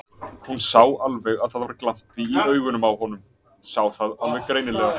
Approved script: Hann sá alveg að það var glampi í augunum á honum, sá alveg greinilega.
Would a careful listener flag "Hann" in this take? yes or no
yes